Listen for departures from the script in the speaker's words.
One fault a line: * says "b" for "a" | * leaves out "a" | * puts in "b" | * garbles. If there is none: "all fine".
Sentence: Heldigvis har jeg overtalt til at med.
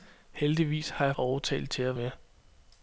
all fine